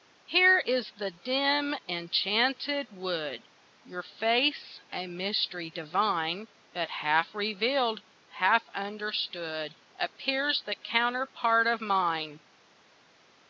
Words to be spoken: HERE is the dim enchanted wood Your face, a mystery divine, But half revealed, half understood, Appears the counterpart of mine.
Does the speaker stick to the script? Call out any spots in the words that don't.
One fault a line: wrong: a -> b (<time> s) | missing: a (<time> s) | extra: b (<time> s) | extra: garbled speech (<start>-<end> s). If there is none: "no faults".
no faults